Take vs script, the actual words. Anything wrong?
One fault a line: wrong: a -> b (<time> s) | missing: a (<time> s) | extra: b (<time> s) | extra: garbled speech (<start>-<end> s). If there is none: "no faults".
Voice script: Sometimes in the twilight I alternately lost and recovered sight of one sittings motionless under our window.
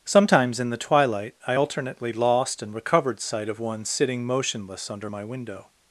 wrong: sittings -> sitting (3.8 s)
wrong: our -> my (5.1 s)